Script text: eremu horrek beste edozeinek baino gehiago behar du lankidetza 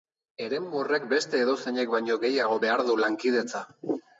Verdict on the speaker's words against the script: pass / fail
pass